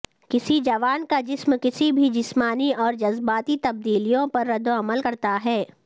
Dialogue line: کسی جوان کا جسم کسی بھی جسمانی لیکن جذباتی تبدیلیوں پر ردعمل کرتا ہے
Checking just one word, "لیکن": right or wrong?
wrong